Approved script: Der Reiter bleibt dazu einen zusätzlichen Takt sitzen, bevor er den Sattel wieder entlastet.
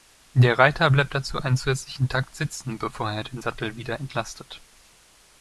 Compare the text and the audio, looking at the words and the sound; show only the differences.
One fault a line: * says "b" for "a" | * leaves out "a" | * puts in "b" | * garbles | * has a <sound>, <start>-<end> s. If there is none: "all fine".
all fine